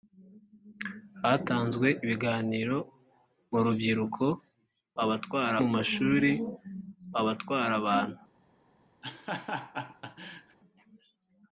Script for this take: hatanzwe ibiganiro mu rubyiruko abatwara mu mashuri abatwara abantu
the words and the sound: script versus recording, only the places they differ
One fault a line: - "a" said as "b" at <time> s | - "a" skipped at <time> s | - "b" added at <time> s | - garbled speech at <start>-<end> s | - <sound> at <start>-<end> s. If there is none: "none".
- laugh at 9.0-10.6 s